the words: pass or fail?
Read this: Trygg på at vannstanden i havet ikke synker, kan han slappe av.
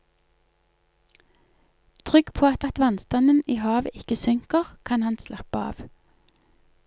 fail